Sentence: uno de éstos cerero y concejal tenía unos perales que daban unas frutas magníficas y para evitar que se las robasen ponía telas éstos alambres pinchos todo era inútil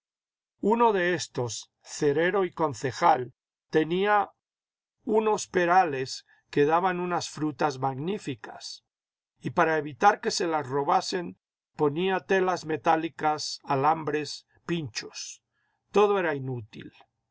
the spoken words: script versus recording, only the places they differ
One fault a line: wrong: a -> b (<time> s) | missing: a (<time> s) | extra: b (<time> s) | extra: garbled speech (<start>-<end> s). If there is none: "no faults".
wrong: éstos -> metálicas (12.7 s)